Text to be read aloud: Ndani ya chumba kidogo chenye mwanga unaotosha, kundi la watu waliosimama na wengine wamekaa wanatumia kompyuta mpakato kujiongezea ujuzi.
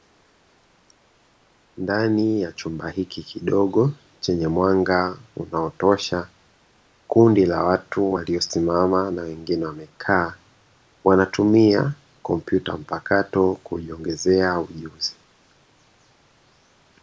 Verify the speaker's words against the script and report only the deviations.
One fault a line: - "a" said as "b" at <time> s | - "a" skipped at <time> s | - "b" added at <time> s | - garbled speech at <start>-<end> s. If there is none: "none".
- "hiki" added at 2.9 s